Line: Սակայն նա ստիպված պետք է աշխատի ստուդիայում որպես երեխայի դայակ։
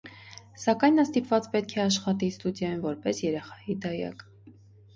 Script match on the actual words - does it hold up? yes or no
yes